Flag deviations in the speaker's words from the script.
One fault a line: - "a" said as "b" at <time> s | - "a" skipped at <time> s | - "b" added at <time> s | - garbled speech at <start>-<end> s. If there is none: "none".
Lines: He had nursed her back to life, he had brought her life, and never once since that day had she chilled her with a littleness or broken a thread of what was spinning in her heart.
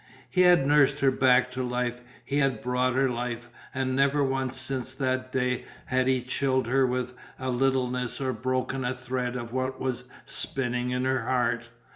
- "she" said as "he" at 6.1 s